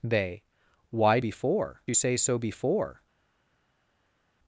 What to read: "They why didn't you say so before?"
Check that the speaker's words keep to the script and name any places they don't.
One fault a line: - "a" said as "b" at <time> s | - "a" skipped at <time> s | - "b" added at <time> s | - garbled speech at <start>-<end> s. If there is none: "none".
- "didn't" said as "before" at 1.2 s